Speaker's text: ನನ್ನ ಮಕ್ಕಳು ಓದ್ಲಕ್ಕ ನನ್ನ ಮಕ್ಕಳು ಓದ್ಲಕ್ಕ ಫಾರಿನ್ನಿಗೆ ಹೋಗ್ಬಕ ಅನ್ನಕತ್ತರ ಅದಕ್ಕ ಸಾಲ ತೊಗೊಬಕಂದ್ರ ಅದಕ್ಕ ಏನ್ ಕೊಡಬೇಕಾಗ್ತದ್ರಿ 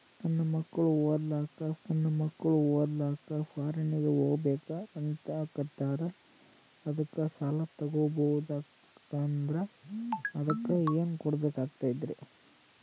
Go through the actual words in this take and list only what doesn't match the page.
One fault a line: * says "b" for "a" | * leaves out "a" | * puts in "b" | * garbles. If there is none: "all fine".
all fine